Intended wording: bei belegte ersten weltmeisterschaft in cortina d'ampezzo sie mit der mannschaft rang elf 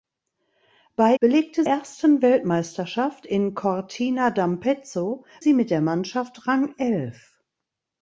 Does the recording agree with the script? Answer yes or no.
yes